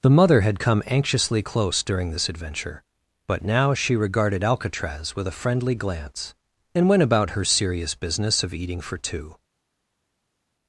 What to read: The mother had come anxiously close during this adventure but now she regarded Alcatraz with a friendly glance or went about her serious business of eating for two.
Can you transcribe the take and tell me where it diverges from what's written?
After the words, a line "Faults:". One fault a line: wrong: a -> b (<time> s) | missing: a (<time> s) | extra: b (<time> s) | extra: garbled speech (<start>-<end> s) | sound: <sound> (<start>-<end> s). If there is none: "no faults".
The mother had come anxiously close during this adventure but now she regarded Alcatraz with a friendly glance and went about her serious business of eating for two.
Faults:
wrong: or -> and (6.7 s)